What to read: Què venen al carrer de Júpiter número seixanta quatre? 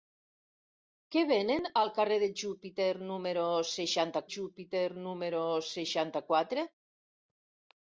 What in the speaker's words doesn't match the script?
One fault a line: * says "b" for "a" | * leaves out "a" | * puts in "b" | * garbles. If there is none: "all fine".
* puts in "Júpiter número seixanta"